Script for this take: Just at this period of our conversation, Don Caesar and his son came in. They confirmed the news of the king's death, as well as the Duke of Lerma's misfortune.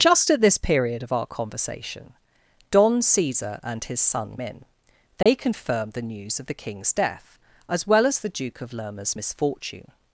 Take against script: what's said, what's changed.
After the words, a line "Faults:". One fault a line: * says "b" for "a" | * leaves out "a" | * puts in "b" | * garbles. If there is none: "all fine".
Just at this period of our conversation, Don Caesar and his son in. They confirmed the news of the king's death, as well as the Duke of Lerma's misfortune.
Faults:
* leaves out "came"